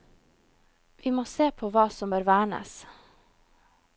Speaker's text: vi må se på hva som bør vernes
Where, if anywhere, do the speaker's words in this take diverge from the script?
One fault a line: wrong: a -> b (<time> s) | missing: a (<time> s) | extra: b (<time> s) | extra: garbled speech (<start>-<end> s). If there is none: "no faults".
no faults